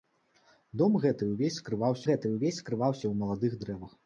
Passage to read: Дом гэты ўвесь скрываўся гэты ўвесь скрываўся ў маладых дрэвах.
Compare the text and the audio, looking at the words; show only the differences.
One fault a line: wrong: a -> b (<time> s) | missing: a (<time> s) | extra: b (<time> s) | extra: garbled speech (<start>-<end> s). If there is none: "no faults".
no faults